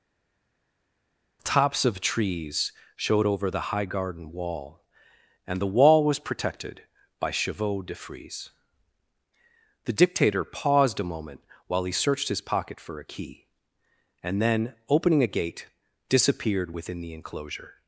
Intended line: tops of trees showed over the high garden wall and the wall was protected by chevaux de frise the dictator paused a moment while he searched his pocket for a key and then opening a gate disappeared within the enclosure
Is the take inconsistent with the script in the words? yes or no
no